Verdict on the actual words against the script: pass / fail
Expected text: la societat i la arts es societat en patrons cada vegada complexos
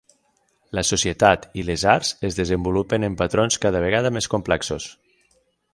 fail